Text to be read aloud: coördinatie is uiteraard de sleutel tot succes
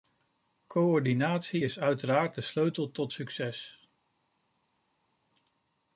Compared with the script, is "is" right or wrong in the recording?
right